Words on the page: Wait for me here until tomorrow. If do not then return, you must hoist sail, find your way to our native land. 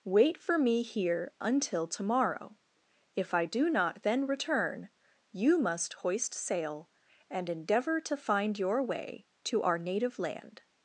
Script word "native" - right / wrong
right